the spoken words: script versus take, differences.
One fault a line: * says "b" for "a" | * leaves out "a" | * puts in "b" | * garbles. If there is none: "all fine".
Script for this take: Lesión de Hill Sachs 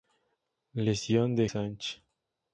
* leaves out "Hill"